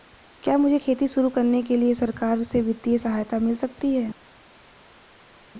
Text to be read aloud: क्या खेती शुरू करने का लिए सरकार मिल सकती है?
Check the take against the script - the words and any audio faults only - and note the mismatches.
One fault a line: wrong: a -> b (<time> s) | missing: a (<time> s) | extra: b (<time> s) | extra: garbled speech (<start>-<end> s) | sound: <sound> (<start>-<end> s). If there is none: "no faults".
extra: मुझे (0.6 s)
wrong: का -> के (1.6 s)
extra: से वित्तीय सहायता (2.4 s)